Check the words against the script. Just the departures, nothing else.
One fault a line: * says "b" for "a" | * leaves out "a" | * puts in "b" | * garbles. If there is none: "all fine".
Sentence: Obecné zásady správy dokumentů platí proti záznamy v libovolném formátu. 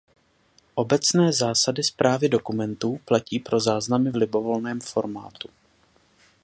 * says "pro" for "proti"